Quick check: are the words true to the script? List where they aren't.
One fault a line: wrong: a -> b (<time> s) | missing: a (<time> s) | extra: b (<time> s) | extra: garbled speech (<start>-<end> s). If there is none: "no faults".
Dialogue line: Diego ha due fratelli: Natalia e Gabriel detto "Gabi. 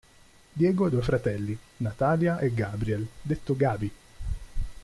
no faults